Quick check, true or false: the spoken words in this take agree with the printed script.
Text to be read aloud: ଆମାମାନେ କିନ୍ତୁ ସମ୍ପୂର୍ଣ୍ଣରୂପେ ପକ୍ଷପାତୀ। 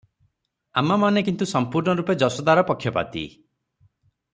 false